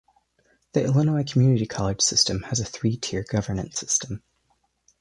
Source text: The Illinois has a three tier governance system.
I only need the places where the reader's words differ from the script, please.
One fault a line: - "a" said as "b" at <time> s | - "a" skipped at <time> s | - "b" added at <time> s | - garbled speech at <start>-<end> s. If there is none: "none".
- "community college system" added at 1.3 s